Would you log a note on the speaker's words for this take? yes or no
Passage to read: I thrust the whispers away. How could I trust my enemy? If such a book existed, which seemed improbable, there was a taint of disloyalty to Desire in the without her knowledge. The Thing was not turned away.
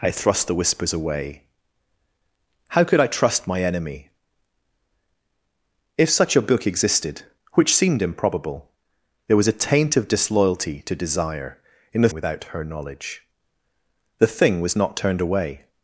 no